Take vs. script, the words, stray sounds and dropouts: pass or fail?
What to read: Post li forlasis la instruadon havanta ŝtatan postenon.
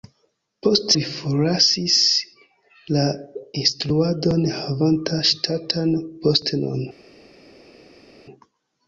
pass